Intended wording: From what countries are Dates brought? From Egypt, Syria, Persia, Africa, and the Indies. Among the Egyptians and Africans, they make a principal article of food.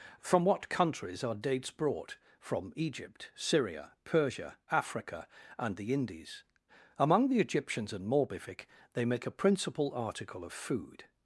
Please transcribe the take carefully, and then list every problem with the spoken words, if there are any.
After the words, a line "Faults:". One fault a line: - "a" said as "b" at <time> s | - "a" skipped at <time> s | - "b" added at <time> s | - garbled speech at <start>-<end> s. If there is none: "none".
From what countries are Dates brought? From Egypt, Syria, Persia, Africa, and the Indies. Among the Egyptians and Morbific, they make a principal article of food.
Faults:
- "Africans" said as "Morbific" at 8.1 s